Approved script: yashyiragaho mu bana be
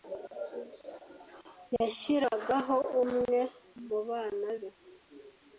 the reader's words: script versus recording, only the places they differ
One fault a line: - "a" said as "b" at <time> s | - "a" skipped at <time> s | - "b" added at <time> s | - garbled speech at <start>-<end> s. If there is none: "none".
- "umwe" added at 3.0 s